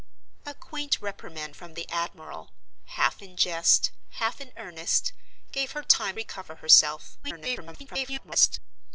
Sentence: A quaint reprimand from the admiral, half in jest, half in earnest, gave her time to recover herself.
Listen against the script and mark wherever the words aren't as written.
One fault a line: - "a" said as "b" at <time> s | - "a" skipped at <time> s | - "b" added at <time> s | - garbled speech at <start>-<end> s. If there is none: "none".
- "to" skipped at 6.2 s
- garbled speech at 7.2-8.6 s